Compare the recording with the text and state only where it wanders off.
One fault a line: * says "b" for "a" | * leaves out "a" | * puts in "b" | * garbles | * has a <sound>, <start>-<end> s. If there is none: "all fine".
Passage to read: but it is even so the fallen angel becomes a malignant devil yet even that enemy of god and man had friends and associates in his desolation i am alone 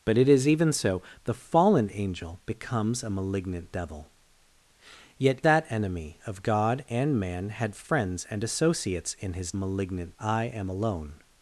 * leaves out "even"
* says "malignant" for "desolation"